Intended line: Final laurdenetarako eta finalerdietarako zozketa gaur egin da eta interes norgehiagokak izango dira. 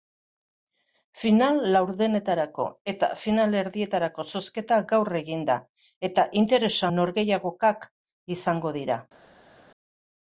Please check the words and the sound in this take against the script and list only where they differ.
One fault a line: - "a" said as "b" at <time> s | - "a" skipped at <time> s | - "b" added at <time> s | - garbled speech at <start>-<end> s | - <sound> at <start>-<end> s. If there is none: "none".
none